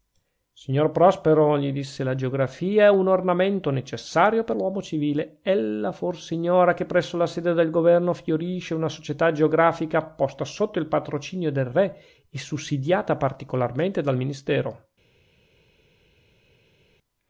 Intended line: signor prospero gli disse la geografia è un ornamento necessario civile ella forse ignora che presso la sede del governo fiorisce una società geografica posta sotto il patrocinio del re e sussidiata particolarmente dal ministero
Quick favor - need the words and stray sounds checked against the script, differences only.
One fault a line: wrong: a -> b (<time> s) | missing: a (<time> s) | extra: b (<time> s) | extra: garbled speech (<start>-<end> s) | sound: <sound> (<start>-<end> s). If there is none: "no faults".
extra: per l'uomo (4.4 s)